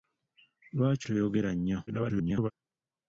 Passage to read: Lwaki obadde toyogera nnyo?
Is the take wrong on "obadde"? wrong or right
wrong